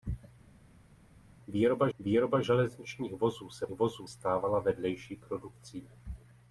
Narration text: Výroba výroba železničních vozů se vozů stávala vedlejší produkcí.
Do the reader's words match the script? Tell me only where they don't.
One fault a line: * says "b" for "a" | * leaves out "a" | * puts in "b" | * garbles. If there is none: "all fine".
all fine